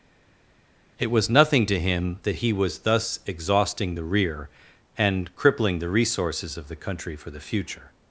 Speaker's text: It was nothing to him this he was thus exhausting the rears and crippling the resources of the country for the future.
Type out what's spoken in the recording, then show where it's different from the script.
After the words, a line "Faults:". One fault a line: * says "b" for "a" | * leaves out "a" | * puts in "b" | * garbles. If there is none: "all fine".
It was nothing to him that he was thus exhausting the rear and crippling the resources of the country for the future.
Faults:
* says "that" for "this"
* says "rear" for "rears"